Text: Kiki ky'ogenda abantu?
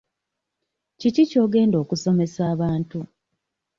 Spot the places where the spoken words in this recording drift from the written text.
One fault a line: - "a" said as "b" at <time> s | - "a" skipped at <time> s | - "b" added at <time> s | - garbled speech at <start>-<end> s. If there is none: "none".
- "okusomesa" added at 1.8 s